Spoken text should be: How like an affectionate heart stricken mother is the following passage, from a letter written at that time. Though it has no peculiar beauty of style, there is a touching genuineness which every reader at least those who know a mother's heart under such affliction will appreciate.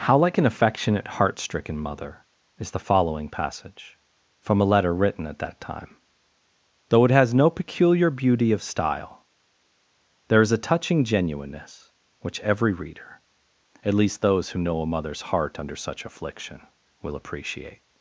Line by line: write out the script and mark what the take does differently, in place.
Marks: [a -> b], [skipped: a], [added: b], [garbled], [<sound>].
How like an affectionate heart stricken mother is the following passage, from a letter written at that time. Though it has no peculiar beauty of style, there is a touching genuineness which every reader at least those who know a mother's heart under such affliction will appreciate.